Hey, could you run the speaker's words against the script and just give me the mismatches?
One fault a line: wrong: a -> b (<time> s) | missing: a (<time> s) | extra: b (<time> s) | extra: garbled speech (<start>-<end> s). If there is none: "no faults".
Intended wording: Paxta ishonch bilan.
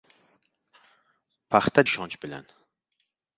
no faults